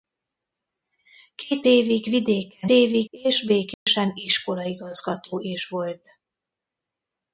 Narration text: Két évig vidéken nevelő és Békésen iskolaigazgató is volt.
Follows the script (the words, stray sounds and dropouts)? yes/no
no